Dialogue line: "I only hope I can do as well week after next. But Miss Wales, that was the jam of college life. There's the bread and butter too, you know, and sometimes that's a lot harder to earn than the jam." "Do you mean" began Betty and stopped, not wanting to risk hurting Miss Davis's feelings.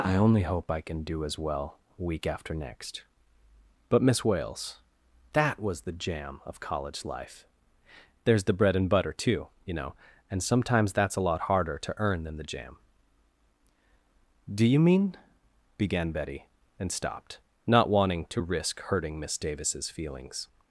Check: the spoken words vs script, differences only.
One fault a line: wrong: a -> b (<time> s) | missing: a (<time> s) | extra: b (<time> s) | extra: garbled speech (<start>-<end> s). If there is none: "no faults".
no faults